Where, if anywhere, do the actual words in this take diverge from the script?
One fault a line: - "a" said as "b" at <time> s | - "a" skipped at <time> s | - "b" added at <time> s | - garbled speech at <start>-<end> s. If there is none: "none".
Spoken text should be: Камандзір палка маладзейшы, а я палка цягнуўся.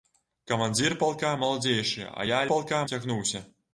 none